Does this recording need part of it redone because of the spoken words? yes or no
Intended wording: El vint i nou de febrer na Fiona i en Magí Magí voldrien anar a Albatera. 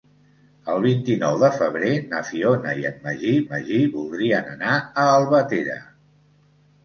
no